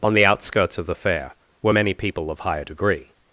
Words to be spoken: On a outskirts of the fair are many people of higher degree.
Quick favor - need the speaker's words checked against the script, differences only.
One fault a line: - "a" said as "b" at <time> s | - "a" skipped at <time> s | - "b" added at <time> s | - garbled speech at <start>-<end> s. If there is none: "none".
- "a" said as "the" at 0.1 s
- "are" said as "were" at 1.6 s